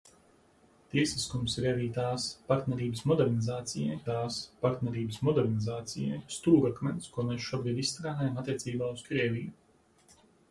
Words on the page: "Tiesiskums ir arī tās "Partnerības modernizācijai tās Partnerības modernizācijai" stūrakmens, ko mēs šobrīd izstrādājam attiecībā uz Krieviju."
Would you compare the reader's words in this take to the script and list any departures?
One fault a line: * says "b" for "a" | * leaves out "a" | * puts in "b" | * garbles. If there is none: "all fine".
all fine